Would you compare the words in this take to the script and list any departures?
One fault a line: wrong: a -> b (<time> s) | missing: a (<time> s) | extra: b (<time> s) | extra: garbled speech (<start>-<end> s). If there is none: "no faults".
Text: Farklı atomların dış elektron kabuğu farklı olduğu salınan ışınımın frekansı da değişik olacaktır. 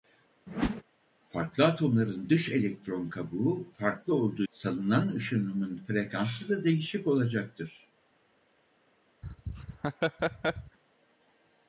no faults